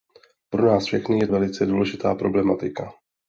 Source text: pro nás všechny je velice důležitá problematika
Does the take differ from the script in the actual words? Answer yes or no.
no